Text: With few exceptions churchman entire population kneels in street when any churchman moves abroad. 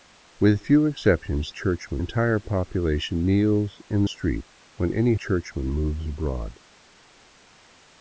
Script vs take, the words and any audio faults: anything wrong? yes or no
no